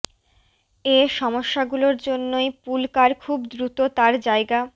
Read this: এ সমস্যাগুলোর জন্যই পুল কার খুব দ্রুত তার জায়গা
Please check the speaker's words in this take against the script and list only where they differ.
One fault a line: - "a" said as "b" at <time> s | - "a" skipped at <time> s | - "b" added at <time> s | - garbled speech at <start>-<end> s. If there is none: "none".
none